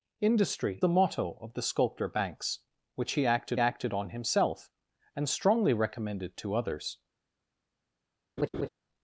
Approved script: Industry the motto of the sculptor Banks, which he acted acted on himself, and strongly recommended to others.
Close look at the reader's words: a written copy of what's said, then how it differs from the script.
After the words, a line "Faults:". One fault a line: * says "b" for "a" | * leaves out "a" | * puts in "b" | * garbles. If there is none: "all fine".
Industry the motto of the sculptor Banks, which he acted acted on himself, and strongly recommended to others.
Faults:
all fine